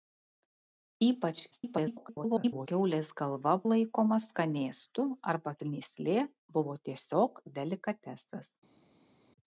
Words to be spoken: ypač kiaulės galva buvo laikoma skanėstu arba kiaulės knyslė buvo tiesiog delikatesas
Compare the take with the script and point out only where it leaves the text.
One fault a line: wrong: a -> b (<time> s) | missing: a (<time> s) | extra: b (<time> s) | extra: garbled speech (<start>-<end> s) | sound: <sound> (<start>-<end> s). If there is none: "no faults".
extra: garbled speech (1.5-2.7 s)
missing: buvo (3.5 s)
missing: kiaulės (5.6 s)